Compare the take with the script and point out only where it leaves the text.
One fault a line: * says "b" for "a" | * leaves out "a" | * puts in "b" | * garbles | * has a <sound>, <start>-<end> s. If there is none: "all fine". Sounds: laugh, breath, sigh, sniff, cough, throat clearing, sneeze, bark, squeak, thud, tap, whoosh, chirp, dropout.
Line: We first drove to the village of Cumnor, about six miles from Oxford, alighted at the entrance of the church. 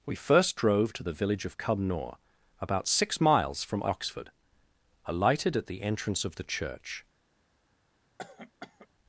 * has a cough, 8.2-8.9 s